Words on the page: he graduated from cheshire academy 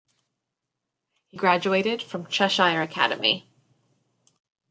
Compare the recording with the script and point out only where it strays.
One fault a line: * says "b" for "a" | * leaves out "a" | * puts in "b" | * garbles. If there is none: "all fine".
all fine